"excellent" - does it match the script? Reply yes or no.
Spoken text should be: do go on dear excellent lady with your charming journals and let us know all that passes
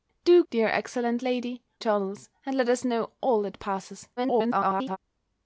yes